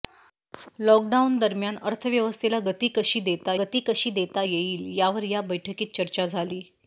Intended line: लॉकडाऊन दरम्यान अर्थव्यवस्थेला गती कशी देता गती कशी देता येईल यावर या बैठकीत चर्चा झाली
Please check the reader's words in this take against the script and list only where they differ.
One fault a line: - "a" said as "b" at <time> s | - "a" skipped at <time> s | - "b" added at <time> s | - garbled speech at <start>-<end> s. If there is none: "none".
none